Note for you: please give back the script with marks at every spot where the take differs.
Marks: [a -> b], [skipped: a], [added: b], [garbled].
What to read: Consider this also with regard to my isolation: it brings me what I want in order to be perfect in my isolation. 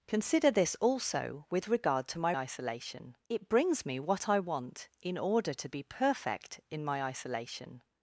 Consider this also with regard to my isolation: it brings me what I want in order to be perfect in my isolation.